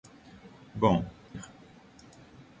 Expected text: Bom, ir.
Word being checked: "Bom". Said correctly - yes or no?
yes